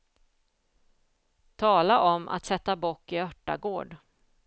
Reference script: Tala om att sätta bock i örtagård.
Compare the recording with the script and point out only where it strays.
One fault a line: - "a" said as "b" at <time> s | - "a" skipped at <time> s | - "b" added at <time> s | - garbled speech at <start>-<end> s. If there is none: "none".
none